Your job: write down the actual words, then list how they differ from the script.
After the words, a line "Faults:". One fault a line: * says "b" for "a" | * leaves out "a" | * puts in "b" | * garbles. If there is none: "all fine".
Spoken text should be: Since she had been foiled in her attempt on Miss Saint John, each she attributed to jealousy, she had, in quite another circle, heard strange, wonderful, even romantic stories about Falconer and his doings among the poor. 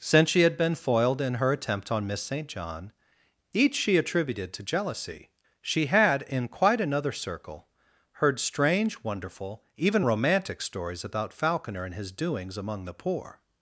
Since she had been foiled in her attempt on Miss Saint John, each she attributed to jealousy, she had, in quite another circle, heard strange, wonderful, even romantic stories about Falconer and his doings among the poor.
Faults:
all fine